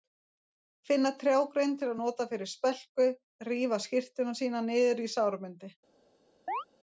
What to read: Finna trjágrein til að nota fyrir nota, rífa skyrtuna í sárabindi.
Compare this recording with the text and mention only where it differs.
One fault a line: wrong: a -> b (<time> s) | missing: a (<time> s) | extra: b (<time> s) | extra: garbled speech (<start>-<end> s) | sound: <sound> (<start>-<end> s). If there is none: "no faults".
wrong: nota -> spelku (2.5 s)
extra: sína niður (4.4 s)
sound: chirp (6.5-6.6 s)